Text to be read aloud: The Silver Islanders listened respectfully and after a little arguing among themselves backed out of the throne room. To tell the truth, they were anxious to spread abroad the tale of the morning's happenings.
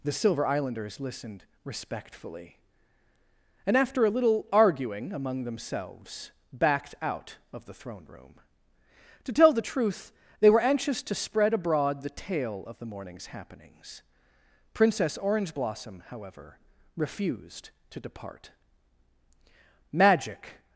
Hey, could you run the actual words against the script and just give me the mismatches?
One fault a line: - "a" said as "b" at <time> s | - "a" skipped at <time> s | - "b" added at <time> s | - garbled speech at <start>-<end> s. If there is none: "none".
- "Princess Orange Blossom however refused to depart Magic" added at 14.7 s